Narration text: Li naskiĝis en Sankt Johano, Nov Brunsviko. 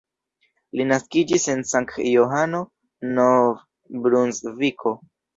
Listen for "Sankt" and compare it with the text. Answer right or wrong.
right